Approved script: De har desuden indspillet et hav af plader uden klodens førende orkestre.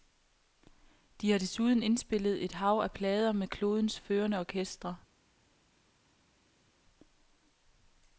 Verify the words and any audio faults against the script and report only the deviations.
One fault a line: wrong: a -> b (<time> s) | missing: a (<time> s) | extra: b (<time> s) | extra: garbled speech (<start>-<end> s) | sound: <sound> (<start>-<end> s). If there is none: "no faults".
wrong: uden -> med (3.3 s)